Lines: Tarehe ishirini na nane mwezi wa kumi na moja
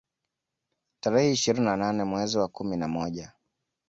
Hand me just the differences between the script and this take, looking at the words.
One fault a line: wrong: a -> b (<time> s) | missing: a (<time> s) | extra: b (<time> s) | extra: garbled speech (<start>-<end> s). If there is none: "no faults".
no faults